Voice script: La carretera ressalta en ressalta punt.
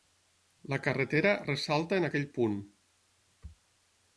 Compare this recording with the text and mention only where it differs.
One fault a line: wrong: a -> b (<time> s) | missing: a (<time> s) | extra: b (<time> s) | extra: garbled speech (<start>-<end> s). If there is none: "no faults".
wrong: ressalta -> aquell (2.1 s)